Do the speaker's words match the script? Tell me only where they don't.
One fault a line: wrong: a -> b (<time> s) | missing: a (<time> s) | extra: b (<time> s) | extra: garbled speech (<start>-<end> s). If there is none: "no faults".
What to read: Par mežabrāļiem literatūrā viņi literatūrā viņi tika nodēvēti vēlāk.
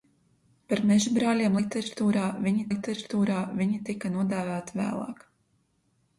no faults